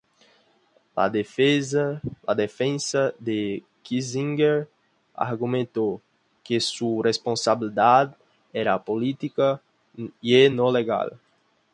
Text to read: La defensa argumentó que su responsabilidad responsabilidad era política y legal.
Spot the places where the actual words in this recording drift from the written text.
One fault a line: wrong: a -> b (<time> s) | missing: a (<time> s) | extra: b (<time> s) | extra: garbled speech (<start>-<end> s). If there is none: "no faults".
extra: de Kissinger (3.2 s)
missing: responsabilidad (8.2 s)
extra: no (10.5 s)